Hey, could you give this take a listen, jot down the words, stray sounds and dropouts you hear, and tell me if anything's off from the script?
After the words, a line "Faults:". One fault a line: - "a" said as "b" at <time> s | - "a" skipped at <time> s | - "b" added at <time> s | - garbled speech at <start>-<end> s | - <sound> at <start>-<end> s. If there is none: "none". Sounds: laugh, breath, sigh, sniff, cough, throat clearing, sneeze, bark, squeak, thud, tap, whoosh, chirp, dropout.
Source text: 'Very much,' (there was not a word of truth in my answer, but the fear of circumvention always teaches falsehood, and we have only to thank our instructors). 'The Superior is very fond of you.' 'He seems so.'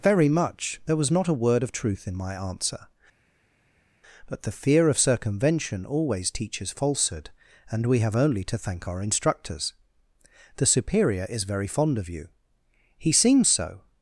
'Very much,' (there was not a word of truth in my answer, but the fear of circumvention always teaches falsehood, and we have only to thank our instructors). 'The Superior is very fond of you.' 'He seems so.'
Faults:
none